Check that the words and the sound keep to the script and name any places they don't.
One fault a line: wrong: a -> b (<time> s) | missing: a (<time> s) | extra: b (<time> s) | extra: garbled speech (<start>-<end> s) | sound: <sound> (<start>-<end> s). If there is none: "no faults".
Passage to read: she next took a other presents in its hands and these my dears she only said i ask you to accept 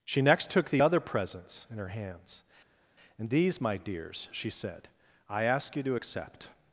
wrong: a -> the (0.7 s)
wrong: its -> her (1.8 s)
missing: only (4.5 s)